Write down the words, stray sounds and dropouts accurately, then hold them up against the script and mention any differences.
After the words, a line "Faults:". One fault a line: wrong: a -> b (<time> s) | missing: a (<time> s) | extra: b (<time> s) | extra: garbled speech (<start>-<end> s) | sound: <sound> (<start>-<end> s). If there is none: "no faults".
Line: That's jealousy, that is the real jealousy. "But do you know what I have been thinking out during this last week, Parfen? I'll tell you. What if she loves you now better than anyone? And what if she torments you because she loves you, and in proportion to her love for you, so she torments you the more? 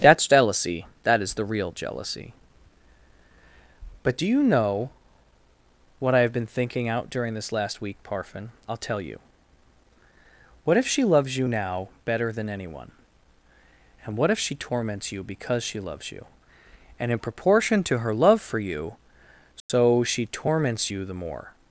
That's jealousy, that is the real jealousy. "But do you know what I have been thinking out during this last week, Parfen? I'll tell you. What if she loves you now better than anyone? And what if she torments you because she loves you, and in proportion to her love for you, so she torments you the more?
Faults:
sound: dropout (19.6-19.7 s)